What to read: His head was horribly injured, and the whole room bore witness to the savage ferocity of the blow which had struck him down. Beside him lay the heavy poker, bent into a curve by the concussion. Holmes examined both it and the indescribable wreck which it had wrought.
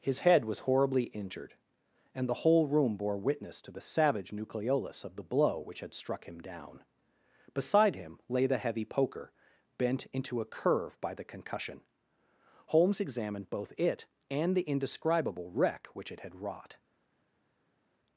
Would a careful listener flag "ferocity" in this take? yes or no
yes